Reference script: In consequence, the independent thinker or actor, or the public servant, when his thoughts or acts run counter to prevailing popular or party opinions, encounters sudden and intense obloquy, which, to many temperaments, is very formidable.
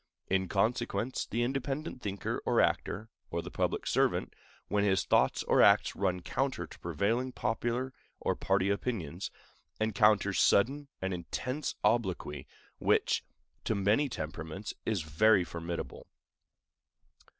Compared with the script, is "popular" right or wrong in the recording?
right